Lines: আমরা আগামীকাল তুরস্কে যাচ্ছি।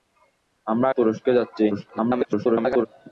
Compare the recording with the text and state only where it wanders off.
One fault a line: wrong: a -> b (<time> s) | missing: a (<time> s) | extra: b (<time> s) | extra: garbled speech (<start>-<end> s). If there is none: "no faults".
missing: আগামীকাল (0.9 s)
extra: garbled speech (1.7-2.9 s)